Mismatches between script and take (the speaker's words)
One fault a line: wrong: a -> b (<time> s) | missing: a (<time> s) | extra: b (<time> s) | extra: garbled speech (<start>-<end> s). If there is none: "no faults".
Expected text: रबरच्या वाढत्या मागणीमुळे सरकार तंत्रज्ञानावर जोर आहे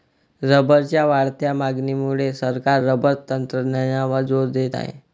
extra: रबर (2.8 s)
extra: देत (4.5 s)